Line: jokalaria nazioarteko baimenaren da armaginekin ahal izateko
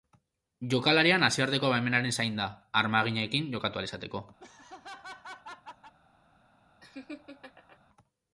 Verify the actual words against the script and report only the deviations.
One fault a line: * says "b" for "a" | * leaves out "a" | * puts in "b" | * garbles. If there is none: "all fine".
* puts in "zain"
* puts in "jokatu"